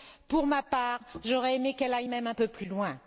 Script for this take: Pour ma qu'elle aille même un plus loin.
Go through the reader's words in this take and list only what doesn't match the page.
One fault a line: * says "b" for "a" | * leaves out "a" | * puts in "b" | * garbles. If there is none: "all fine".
* puts in "part j'aurais aimé"
* puts in "peu"